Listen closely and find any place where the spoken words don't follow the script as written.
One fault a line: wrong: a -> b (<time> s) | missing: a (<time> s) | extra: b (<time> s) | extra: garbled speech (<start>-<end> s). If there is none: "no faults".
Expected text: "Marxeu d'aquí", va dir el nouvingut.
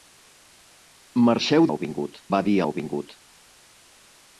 wrong: d'aquí -> nouvingut (1.7 s)
missing: el (2.6 s)